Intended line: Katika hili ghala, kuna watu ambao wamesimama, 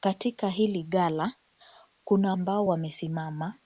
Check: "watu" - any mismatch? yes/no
yes